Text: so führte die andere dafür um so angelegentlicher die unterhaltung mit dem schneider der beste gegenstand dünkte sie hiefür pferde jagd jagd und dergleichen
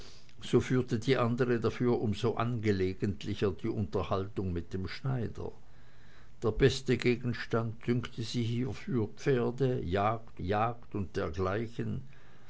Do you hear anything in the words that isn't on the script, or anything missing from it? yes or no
no